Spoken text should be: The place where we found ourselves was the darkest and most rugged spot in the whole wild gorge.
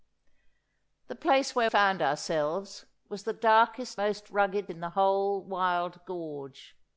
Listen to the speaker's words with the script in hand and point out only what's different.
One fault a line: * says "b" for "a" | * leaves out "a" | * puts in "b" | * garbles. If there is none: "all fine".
* leaves out "we"
* leaves out "and"
* leaves out "spot"